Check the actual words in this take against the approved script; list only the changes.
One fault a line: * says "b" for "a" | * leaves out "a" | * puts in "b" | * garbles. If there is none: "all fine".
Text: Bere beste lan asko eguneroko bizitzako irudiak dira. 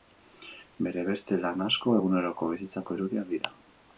all fine